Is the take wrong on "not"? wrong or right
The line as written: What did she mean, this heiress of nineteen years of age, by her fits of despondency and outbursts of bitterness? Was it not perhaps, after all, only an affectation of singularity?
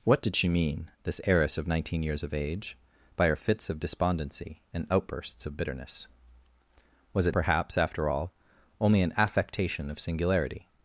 wrong